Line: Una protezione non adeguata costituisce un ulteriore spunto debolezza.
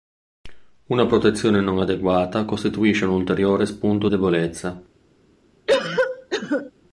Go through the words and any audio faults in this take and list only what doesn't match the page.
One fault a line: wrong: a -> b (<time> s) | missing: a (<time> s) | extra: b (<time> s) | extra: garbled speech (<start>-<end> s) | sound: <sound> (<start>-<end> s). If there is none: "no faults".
sound: cough (5.7-6.7 s)